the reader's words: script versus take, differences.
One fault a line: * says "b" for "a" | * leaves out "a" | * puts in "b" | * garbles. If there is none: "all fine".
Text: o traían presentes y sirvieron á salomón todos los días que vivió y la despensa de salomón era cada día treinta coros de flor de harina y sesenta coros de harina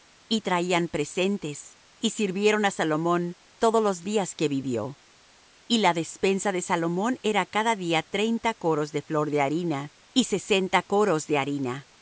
* says "y" for "o"